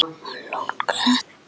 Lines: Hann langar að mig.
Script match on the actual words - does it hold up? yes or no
yes